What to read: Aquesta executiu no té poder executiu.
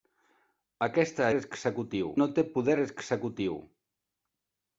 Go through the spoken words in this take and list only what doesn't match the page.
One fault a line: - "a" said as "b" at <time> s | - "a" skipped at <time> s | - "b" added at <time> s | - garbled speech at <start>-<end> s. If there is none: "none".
none